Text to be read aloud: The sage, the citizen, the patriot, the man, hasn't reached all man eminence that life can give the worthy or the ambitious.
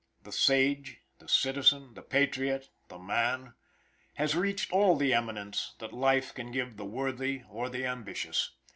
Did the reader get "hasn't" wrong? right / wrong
wrong